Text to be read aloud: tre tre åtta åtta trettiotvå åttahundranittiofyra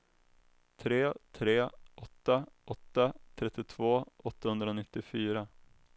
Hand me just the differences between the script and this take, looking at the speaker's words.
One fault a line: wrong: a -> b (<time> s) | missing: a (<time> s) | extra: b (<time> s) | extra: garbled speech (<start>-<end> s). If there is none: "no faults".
no faults